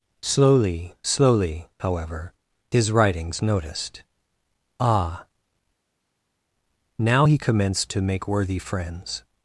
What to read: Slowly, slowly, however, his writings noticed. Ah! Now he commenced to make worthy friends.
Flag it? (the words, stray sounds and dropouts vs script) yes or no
no